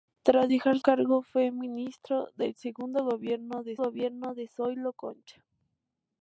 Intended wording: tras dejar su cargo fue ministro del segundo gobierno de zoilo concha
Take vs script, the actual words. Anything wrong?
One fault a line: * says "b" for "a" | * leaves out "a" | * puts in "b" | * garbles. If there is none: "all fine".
* leaves out "su"
* puts in "gobierno de"